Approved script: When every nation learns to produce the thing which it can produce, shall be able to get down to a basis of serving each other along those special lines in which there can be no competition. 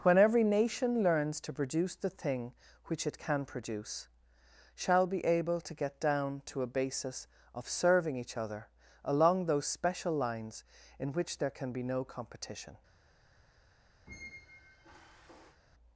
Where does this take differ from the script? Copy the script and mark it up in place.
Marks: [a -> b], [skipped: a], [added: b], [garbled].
When every nation learns to produce the thing which it can produce, shall be able to get down to a basis of serving each other along those special lines in which there can be no competition.